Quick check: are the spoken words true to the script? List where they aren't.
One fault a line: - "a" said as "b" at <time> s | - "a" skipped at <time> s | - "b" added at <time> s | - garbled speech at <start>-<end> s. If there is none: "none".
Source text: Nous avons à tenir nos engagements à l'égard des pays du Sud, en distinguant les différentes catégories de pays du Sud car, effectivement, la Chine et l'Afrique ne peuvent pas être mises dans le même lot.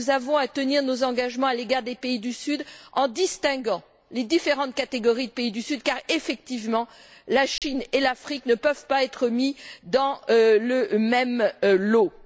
none